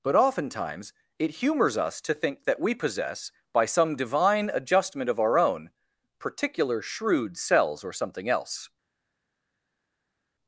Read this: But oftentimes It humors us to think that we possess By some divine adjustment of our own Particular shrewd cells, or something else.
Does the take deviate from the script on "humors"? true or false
false